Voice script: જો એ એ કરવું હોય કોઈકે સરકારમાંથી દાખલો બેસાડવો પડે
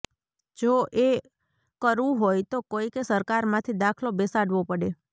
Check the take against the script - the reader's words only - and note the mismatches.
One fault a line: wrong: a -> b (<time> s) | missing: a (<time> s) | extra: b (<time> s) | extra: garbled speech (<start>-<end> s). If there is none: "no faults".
missing: એ (1.1 s)
extra: તો (2.5 s)